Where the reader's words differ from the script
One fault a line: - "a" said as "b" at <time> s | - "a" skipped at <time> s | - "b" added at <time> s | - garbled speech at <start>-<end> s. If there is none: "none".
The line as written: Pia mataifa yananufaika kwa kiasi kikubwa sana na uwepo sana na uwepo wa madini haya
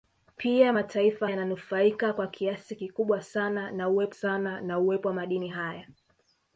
none